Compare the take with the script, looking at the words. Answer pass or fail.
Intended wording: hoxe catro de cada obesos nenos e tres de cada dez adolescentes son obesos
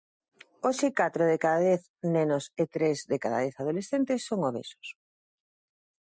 fail